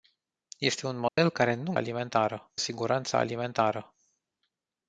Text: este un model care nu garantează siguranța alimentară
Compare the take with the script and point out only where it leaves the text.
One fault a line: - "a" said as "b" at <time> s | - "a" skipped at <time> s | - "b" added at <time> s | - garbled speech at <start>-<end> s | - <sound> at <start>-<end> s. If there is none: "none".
- dropout at 1.1-1.2 s
- "garantează" said as "alimentară" at 1.7 s